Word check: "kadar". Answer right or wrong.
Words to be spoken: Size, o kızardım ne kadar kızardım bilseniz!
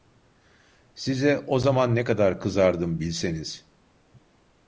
right